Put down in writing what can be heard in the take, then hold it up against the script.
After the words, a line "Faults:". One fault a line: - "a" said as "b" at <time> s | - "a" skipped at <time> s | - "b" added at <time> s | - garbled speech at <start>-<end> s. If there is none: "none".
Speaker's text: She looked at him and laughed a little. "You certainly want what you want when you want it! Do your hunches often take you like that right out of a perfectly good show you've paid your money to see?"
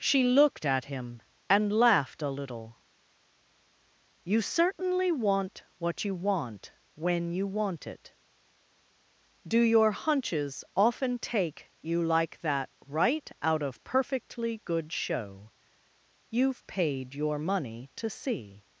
She looked at him and laughed a little. "You certainly want what you want when you want it! Do your hunches often take you like that right out of perfectly good show you've paid your money to see?"
Faults:
- "a" skipped at 13.8 s